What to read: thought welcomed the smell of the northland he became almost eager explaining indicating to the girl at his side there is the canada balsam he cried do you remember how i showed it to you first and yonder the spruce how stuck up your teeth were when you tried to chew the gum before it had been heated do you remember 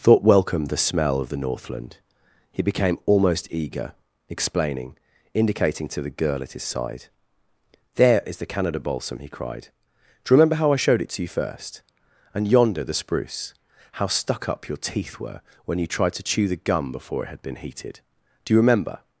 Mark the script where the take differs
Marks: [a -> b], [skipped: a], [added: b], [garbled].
thought welcomed the smell of the northland he became almost eager explaining indicating to the girl at his side there is the canada balsam he cried do you remember how i showed it to you first and yonder the spruce how stuck up your teeth were when you tried to chew the gum before it had been heated do you remember